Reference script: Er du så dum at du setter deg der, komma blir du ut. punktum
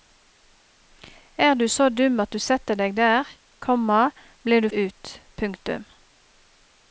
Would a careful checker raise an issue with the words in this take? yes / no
no